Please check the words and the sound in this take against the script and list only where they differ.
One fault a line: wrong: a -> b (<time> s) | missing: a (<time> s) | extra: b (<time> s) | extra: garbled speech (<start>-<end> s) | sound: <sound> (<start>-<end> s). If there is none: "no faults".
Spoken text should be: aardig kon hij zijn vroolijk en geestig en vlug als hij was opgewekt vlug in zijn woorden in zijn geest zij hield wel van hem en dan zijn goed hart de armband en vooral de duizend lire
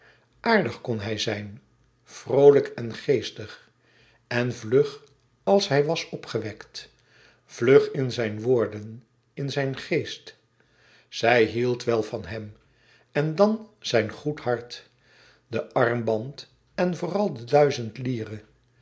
no faults